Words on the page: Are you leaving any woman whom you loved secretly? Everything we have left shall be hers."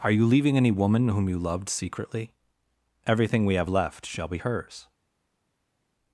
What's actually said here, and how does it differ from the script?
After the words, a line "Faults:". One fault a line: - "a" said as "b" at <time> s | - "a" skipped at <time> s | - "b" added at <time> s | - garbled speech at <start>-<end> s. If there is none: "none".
Are you leaving any woman whom you loved secretly? Everything we have left shall be hers."
Faults:
none